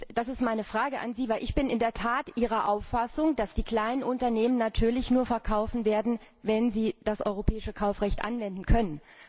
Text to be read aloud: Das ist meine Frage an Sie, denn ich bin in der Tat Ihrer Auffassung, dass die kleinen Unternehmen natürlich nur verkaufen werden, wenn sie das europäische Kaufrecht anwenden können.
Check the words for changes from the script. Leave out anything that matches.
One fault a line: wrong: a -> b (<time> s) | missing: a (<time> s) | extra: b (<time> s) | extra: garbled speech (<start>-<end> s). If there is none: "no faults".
no faults